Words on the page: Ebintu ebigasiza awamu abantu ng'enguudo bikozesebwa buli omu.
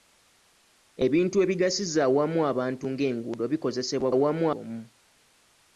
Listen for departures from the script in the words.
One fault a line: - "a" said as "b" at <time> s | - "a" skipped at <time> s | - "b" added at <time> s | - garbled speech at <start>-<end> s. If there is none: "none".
- "buli" said as "awamu" at 4.1 s